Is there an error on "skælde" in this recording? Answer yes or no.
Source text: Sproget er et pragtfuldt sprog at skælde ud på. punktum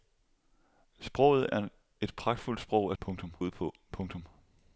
yes